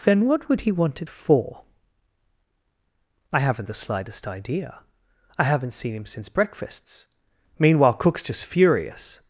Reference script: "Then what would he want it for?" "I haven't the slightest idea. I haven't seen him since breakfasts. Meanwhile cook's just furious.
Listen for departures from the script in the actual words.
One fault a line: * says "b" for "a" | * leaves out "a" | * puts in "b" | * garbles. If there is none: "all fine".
all fine